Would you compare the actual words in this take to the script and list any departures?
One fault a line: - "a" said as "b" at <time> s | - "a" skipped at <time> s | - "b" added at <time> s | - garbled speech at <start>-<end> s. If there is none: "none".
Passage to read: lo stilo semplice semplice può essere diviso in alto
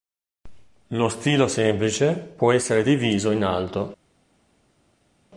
- "semplice" skipped at 2.1 s